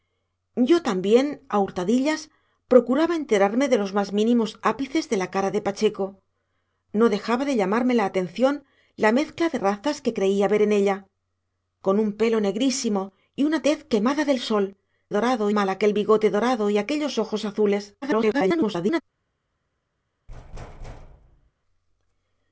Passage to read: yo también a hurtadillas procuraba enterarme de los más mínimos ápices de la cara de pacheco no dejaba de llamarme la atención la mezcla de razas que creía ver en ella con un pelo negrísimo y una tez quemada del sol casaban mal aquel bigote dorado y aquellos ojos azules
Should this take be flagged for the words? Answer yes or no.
yes